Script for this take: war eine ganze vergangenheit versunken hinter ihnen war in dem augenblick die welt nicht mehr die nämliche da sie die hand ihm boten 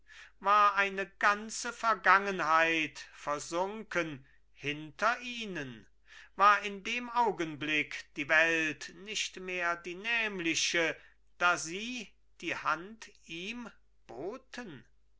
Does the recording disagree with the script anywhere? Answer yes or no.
no